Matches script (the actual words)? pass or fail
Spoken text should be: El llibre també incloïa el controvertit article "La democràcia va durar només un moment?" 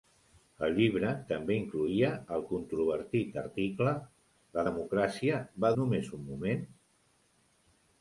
fail